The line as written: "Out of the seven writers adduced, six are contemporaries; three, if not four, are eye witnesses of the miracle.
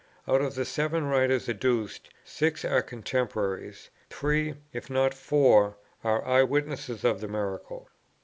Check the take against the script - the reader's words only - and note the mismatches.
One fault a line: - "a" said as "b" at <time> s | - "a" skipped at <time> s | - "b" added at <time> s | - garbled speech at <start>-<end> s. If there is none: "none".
none